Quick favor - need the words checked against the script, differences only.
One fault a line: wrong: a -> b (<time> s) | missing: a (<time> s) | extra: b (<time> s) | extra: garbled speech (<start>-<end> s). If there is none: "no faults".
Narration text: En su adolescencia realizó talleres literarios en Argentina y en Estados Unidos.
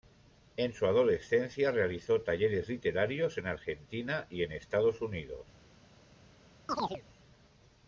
no faults